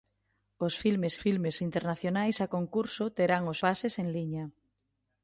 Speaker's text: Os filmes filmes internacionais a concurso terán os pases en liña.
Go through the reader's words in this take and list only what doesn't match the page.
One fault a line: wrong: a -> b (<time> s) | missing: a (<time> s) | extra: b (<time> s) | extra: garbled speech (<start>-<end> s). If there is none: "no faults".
no faults